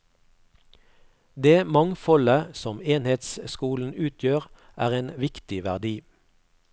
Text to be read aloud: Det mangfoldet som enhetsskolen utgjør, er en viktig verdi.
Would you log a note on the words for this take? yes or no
no